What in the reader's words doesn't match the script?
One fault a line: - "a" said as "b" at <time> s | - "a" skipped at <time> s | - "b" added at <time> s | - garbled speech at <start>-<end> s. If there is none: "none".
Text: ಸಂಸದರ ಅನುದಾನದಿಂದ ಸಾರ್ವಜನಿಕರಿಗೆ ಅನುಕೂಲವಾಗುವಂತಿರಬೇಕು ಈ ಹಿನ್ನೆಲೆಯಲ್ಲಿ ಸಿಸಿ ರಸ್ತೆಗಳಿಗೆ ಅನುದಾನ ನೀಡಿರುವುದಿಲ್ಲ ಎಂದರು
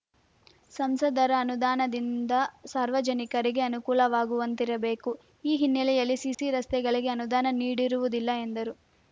none